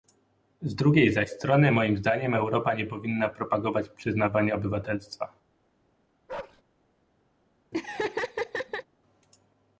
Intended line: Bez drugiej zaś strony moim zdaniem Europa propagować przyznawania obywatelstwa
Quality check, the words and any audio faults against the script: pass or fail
fail